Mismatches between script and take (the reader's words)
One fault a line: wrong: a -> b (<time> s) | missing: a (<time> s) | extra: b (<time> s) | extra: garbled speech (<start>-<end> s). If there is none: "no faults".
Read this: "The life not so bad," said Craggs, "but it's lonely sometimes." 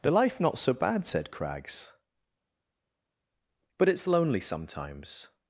no faults